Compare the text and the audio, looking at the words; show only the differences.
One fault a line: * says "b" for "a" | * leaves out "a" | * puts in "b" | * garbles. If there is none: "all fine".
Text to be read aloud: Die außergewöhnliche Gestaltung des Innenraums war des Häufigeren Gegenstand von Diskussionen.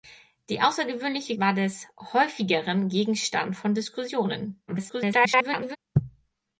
* leaves out "Gestaltung des Innenraums"
* garbles